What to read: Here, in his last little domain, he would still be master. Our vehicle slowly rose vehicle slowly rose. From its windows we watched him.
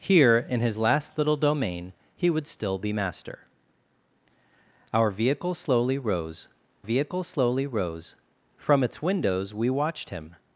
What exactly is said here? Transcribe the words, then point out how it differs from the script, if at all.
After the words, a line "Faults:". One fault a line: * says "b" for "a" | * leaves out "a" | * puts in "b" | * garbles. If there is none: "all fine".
Here, in his last little domain, he would still be master. Our vehicle slowly rose vehicle slowly rose. From its windows we watched him.
Faults:
all fine